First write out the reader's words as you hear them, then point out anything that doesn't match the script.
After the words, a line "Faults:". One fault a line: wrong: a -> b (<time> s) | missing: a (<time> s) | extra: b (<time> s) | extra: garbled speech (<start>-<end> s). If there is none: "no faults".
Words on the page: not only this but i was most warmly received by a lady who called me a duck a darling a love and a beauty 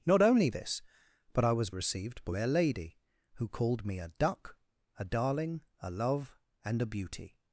not only this but i was received by a lady who called me a duck a darling a love and a beauty
Faults:
missing: most warmly (1.8 s)